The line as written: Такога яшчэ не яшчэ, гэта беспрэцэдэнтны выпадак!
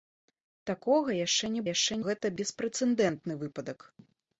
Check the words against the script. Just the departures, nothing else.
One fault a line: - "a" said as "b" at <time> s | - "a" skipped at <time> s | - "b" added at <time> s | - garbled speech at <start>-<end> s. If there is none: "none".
none